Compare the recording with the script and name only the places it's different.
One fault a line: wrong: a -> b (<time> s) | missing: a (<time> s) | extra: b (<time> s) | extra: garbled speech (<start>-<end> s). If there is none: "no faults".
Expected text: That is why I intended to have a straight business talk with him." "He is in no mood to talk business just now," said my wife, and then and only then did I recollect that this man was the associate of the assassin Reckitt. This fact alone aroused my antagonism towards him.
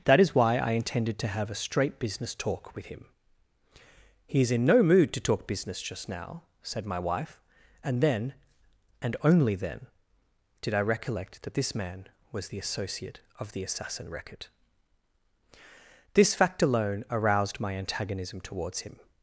no faults